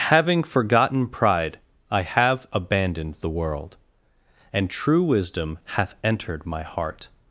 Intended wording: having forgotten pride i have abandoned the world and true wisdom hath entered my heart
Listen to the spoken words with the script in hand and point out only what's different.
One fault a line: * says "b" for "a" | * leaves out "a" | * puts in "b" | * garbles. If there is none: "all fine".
all fine